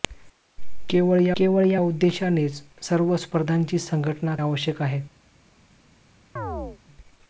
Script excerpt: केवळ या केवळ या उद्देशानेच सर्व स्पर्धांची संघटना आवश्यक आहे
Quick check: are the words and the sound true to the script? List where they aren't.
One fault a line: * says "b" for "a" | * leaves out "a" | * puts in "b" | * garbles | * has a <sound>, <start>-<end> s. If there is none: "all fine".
* has a chirp, 6.4-6.8 s